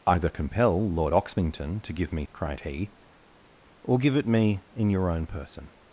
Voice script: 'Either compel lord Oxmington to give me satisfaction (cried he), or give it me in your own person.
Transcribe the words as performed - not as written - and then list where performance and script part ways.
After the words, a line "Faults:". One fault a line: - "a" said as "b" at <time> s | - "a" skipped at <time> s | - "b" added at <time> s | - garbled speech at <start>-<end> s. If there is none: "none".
'Either compel lord Oxmington to give me (cried he), or give it me in your own person.
Faults:
- "satisfaction" skipped at 2.2 s